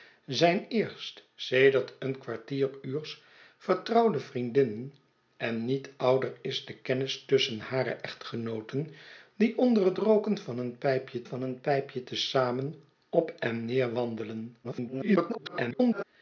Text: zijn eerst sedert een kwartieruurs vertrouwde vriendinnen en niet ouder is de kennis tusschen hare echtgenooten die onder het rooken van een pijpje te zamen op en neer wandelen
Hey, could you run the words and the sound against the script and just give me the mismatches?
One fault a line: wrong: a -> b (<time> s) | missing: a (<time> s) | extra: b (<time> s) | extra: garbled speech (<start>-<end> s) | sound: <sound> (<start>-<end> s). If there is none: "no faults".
extra: van een pijpje (11.2 s)
extra: garbled speech (14.6-16.0 s)